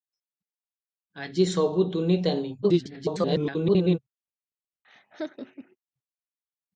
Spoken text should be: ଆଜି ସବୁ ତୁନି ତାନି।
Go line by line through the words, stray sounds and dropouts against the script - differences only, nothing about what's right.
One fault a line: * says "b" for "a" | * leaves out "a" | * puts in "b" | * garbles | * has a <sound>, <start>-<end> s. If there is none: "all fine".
* garbles
* has a laugh, 4.8-5.8 s